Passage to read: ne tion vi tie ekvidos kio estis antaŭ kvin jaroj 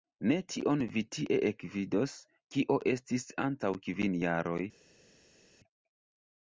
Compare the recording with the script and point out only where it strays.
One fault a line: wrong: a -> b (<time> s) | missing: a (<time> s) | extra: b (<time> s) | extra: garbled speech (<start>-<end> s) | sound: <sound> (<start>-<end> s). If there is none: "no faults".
no faults